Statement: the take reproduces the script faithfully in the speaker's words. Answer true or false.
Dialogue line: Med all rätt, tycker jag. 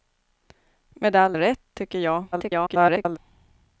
false